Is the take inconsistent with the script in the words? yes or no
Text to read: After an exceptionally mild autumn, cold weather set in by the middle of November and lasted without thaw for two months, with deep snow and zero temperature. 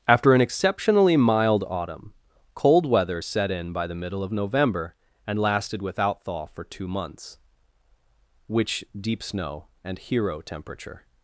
yes